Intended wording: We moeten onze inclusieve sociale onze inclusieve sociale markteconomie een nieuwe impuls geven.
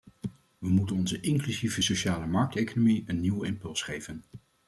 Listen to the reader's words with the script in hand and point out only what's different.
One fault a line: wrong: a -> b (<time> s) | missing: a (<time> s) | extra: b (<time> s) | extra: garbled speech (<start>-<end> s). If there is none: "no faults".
missing: onze inclusieve sociale (2.3 s)